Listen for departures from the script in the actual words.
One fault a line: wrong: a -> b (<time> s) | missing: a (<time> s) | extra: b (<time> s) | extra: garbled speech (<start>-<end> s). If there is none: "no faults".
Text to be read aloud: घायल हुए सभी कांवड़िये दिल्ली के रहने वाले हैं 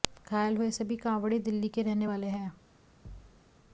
no faults